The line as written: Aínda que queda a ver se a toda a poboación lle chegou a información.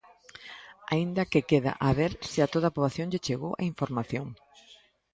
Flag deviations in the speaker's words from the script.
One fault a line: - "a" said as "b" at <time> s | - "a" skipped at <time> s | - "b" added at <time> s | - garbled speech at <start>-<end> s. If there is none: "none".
none